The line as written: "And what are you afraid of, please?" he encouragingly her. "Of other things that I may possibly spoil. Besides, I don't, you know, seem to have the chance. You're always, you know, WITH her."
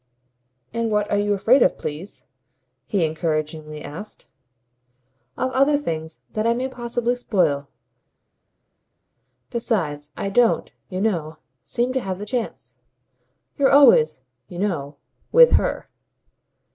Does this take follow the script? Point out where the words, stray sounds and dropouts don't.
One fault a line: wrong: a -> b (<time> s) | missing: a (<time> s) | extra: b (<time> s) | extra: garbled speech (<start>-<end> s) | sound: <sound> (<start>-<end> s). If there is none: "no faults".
wrong: her -> asked (3.8 s)